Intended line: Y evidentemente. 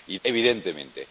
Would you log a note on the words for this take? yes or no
no